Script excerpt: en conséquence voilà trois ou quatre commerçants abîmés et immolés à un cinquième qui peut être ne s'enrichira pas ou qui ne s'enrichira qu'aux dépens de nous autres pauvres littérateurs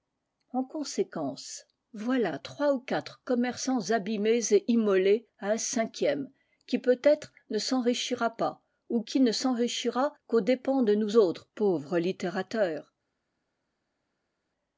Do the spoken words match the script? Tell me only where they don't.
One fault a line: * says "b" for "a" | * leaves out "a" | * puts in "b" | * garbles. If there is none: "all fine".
all fine